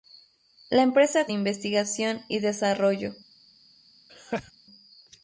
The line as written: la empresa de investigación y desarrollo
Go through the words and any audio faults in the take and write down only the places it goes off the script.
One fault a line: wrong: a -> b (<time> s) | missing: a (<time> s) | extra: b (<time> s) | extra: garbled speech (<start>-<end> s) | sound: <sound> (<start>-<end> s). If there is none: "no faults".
sound: laugh (4.1-4.5 s)